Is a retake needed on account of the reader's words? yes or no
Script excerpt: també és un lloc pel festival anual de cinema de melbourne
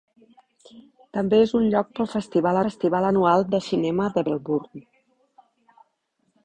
yes